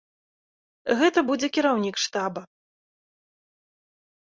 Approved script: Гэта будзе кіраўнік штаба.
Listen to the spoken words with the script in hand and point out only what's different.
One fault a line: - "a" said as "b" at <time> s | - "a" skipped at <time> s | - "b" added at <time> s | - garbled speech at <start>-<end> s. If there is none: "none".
none